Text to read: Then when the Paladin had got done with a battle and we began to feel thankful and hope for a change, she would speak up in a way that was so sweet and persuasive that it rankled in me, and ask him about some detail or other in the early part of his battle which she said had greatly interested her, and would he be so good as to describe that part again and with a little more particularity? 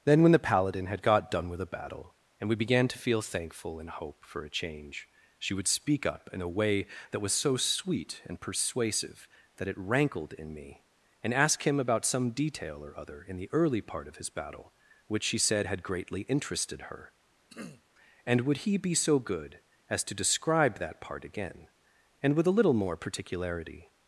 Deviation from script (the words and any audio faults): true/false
true